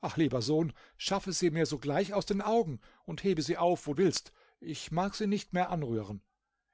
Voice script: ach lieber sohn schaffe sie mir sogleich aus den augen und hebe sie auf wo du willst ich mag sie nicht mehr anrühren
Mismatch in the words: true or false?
true